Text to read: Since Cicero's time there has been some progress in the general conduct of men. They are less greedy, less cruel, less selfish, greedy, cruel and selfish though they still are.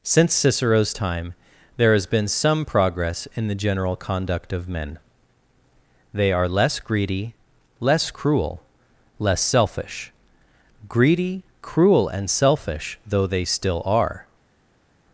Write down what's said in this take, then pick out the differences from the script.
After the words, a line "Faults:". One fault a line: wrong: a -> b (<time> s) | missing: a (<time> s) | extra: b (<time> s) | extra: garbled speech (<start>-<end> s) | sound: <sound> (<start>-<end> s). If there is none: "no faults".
Since Cicero's time there has been some progress in the general conduct of men. They are less greedy, less cruel, less selfish, greedy, cruel and selfish though they still are.
Faults:
no faults